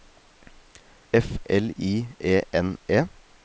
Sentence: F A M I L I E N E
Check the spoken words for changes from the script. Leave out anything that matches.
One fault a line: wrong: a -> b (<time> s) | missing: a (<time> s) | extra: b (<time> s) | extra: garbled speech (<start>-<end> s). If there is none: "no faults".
missing: A M I (1.4 s)